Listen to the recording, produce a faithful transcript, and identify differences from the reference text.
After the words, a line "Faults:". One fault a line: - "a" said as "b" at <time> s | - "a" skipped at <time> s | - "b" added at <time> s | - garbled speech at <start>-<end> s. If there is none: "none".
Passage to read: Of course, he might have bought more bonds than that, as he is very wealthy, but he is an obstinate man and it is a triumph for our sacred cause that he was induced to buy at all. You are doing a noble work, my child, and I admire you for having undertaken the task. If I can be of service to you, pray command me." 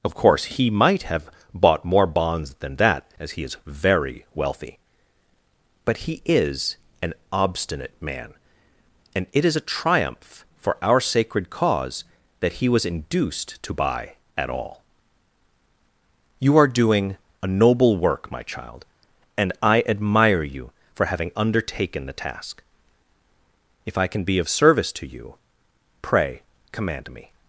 Of course, he might have bought more bonds than that, as he is very wealthy, but he is an obstinate man and it is a triumph for our sacred cause that he was induced to buy at all. You are doing a noble work, my child, and I admire you for having undertaken the task. If I can be of service to you, pray command me."
Faults:
none